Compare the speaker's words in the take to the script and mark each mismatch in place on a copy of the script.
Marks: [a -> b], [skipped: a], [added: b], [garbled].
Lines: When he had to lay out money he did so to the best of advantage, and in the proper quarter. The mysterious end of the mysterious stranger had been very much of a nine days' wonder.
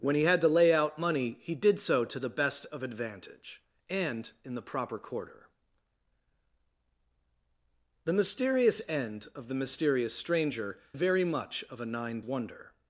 When he had to lay out money he did so to the best of advantage, and in the proper quarter. The mysterious end of the mysterious stranger [skipped: had been] very much of a nine [skipped: days'] wonder.